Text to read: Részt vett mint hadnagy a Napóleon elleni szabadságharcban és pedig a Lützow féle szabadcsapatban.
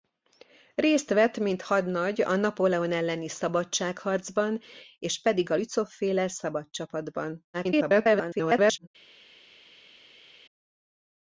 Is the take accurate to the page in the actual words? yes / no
no